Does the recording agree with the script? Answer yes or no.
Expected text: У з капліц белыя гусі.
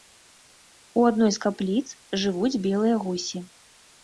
no